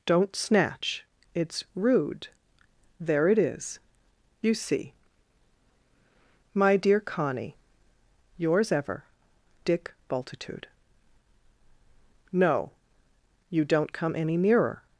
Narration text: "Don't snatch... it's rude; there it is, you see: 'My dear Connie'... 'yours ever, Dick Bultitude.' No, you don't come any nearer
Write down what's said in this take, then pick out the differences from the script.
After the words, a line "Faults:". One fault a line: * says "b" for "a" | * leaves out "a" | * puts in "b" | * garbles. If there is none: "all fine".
"Don't snatch... it's rude; there it is, you see: 'My dear Connie'... 'yours ever, Dick Bultitude.' No, you don't come any nearer
Faults:
all fine